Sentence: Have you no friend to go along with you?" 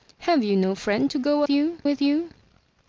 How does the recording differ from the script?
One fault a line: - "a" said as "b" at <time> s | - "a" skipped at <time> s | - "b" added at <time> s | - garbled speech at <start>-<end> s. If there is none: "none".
- "along" said as "you" at 1.5 s